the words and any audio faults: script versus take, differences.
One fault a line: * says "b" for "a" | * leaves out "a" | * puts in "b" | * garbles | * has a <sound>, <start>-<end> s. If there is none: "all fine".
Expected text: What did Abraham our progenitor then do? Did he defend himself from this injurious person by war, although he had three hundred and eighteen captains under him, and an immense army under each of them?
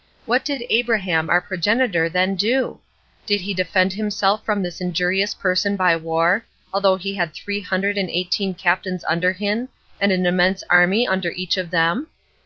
all fine